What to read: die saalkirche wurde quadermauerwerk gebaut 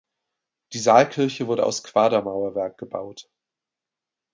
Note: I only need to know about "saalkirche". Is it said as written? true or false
true